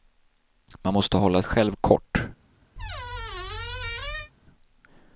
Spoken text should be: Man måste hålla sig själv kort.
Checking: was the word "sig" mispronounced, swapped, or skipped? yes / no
yes